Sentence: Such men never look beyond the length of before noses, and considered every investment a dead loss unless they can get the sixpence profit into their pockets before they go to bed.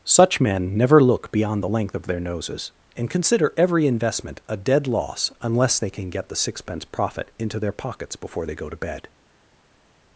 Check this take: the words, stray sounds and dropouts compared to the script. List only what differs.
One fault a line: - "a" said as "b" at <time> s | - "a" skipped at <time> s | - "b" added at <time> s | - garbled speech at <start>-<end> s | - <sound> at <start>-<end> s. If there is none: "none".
- "before" said as "their" at 2.1 s
- "considered" said as "consider" at 3.1 s